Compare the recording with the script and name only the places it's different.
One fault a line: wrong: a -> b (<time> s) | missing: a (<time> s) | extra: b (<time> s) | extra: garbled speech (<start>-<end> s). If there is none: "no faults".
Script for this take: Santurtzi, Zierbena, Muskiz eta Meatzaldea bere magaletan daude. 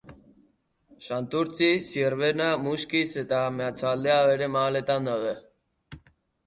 no faults